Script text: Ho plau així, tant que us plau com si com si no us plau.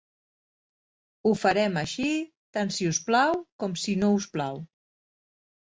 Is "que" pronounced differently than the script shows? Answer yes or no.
yes